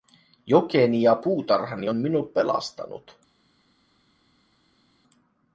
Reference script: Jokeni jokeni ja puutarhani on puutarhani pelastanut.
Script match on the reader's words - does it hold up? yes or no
no